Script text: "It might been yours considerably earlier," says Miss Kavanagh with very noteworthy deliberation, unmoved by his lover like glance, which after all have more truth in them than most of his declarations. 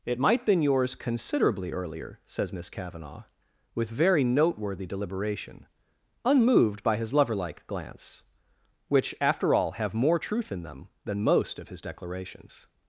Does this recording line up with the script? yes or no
yes